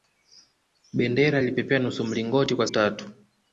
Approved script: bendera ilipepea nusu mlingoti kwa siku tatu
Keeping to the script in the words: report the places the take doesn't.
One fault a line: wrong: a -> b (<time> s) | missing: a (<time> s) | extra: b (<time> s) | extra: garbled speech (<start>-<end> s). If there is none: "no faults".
missing: siku (2.7 s)